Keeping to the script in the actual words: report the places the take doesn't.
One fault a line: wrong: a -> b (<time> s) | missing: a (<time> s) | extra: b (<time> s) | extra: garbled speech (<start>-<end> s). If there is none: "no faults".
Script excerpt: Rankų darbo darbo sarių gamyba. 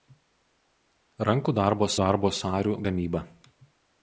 no faults